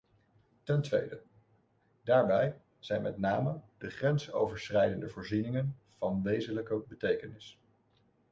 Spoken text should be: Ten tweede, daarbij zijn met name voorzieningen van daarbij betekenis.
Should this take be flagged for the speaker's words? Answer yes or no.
yes